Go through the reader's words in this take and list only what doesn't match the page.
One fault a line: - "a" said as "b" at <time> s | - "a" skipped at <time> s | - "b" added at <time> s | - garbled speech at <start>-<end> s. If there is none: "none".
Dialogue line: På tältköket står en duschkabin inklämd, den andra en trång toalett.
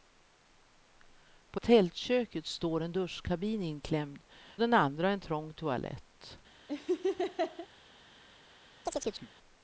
none